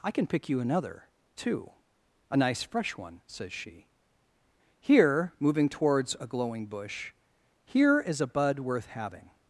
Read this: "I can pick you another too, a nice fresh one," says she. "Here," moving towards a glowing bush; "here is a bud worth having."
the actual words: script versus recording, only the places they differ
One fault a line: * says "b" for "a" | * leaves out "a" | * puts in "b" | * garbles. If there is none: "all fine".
all fine